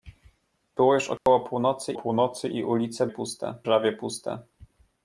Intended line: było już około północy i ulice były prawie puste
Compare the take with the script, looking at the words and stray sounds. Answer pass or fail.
fail